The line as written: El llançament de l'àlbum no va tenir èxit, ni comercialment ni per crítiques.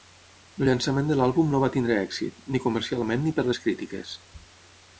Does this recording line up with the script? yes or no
no